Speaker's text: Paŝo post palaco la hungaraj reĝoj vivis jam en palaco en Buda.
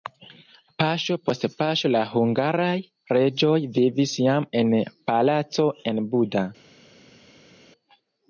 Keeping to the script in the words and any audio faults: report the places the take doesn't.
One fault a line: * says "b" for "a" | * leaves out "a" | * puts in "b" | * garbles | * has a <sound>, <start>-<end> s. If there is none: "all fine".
* says "paŝo" for "palaco"